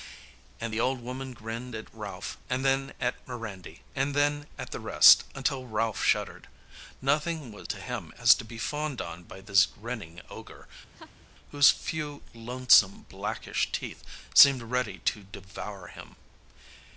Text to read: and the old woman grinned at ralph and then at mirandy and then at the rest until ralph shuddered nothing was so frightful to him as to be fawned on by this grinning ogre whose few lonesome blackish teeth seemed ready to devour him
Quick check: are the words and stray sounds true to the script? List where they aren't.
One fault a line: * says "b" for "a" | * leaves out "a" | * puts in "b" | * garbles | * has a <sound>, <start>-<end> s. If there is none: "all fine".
* leaves out "so frightful"
* has a laugh, 10.9-11.3 s